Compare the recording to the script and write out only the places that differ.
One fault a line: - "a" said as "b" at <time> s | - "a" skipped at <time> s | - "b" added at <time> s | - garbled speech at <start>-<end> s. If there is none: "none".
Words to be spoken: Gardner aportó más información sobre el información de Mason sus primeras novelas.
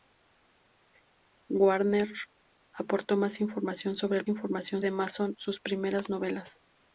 none